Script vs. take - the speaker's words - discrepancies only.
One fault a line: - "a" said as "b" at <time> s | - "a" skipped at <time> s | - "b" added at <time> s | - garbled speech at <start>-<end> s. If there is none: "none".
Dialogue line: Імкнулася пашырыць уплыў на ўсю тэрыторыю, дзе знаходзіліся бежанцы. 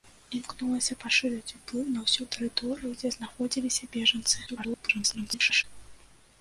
- garbled speech at 4.5-5.6 s